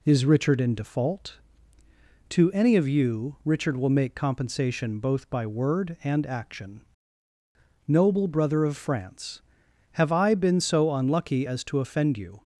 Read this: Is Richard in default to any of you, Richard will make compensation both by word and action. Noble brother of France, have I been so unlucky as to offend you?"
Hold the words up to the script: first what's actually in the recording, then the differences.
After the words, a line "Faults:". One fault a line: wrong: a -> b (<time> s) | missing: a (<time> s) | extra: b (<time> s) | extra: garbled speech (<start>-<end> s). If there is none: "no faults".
Is Richard in default to any of you, Richard will make compensation both by word and action. Noble brother of France, have I been so unlucky as to offend you?"
Faults:
no faults